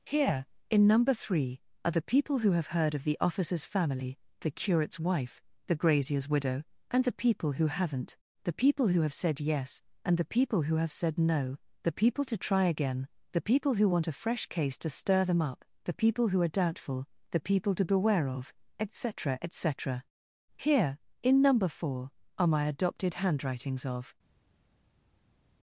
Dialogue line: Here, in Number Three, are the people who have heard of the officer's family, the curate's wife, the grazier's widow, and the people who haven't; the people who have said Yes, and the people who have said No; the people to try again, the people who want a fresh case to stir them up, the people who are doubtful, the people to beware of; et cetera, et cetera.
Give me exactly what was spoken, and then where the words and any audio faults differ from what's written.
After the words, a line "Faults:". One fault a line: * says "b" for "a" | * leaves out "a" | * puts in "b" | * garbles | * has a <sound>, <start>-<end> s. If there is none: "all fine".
Here, in Number Three, are the people who have heard of the officer's family, the curate's wife, the grazier's widow, and the people who haven't; the people who have said Yes, and the people who have said No; the people to try again, the people who want a fresh case to stir them up, the people who are doubtful, the people to beware of; et cetera, et cetera. Here, in Number Four, are my Adopted Handwritings of
Faults:
* puts in "Here in Number Four are my Adopted Handwritings of"